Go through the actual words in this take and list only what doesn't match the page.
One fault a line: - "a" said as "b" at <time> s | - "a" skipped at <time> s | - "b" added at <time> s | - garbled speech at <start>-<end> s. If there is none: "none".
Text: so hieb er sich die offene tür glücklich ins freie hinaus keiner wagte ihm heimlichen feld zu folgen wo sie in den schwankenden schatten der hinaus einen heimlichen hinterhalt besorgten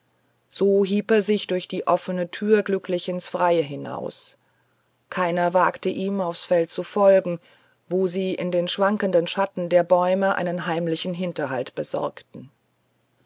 - "durch" added at 1.4 s
- "heimlichen" said as "aufs" at 6.2 s
- "hinaus" said as "bäume" at 9.8 s